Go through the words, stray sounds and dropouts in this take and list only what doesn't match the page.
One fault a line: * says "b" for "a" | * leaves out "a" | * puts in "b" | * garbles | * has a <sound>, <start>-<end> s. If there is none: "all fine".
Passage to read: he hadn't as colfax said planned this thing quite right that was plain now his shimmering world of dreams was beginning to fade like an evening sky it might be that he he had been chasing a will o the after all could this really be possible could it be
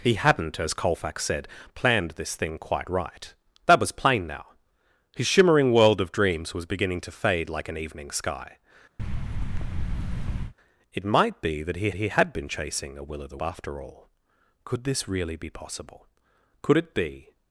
* has a thud, 9.0-10.5 s